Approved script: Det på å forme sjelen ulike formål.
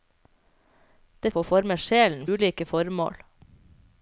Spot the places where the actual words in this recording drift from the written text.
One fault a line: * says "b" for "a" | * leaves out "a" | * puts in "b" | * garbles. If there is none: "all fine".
all fine